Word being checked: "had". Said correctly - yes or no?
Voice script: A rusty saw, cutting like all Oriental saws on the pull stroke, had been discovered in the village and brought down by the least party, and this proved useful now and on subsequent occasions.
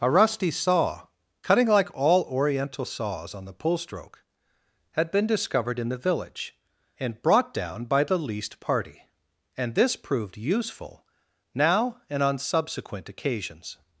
yes